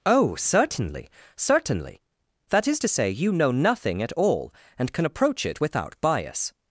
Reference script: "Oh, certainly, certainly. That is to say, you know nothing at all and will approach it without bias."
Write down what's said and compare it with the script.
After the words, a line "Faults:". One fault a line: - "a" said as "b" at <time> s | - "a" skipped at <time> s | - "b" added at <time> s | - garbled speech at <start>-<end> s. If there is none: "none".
"Oh, certainly, certainly. That is to say, you know nothing at all and can approach it without bias."
Faults:
- "will" said as "can" at 4.9 s